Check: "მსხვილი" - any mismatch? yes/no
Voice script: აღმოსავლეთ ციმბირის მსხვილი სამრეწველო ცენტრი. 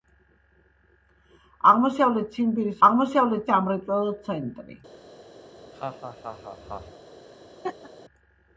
yes